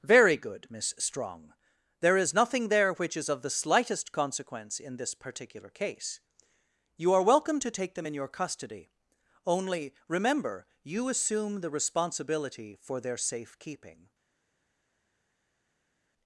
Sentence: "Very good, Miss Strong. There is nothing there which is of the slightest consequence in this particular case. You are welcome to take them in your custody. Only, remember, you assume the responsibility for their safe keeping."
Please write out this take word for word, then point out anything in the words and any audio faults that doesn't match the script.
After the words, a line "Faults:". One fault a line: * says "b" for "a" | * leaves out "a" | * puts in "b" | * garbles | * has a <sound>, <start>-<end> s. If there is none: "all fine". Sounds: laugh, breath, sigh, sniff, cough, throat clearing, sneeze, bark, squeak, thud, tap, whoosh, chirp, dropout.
"Very good, Miss Strong. There is nothing there which is of the slightest consequence in this particular case. You are welcome to take them in your custody. Only, remember, you assume the responsibility for their safe keeping."
Faults:
all fine